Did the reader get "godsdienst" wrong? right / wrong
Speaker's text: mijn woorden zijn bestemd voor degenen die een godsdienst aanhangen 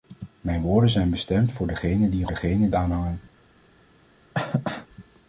wrong